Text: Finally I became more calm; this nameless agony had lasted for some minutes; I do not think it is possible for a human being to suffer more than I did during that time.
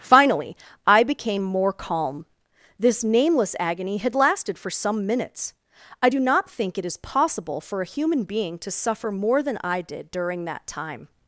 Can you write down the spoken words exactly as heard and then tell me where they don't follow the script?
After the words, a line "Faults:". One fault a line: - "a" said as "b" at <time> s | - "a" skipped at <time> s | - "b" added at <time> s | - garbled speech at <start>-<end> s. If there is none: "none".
Finally I became more calm; this nameless agony had lasted for some minutes; I do not think it is possible for a human being to suffer more than I did during that time.
Faults:
none